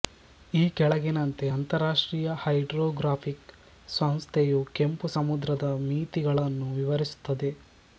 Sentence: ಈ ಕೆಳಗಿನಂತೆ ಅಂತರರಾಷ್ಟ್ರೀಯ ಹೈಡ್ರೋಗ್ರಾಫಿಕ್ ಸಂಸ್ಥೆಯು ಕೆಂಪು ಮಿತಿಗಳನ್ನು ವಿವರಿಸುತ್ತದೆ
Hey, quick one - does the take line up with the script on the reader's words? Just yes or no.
no